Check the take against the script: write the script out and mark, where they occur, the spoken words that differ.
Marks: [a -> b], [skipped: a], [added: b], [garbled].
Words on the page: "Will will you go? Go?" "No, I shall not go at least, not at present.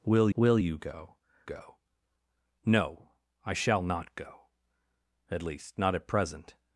"Will will you go? Go?" "No, I shall not go at least, not at present.